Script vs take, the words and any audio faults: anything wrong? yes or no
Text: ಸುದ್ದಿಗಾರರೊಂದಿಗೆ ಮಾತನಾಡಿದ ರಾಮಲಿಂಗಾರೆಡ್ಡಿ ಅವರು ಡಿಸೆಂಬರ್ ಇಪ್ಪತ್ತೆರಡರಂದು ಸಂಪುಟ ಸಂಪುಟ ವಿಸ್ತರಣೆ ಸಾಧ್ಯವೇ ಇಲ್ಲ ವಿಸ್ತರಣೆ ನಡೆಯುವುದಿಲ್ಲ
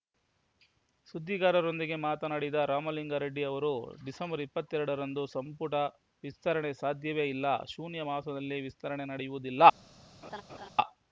yes